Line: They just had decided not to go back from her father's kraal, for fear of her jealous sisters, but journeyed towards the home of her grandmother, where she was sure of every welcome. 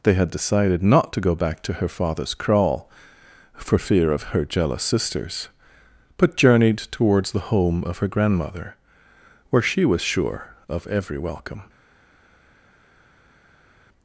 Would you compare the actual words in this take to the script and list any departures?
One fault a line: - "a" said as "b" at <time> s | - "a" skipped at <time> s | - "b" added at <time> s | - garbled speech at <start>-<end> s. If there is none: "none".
- "just" skipped at 0.1 s
- "from" said as "to" at 1.6 s